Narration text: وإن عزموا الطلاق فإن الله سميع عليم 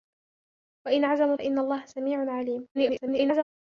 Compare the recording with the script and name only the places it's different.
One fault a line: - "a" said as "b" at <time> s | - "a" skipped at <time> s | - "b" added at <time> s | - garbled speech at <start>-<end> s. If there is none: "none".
- "الطلاق" skipped at 1.3 s
- garbled speech at 2.7-3.4 s